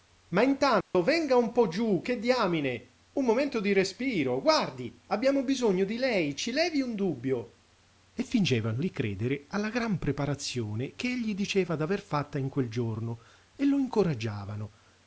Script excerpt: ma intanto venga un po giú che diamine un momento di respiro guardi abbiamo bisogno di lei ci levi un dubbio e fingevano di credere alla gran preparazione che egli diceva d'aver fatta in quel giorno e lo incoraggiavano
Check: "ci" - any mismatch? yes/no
no